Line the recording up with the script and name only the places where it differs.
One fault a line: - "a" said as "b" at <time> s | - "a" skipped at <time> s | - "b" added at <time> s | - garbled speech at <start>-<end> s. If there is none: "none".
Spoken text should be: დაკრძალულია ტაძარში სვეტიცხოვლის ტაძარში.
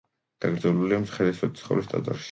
- "ტაძარში" said as "მცხეთის" at 1.0 s